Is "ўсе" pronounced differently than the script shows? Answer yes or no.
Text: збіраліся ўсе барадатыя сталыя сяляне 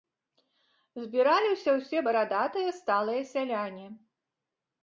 no